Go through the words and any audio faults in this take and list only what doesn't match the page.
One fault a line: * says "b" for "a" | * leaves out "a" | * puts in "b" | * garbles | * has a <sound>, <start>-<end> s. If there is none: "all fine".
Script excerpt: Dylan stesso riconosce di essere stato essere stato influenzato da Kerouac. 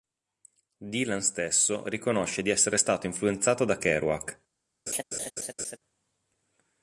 * leaves out "essere stato"
* has a laugh, 4.9-5.8 s